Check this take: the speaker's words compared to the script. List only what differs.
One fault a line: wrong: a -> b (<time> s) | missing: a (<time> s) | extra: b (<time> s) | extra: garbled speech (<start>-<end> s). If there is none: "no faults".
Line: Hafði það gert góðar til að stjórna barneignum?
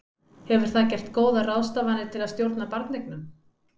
wrong: Hafði -> Hefur (0.5 s)
extra: ráðstafanir (1.5 s)